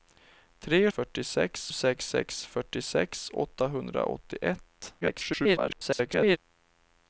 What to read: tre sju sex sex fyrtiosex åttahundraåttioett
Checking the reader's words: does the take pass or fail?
fail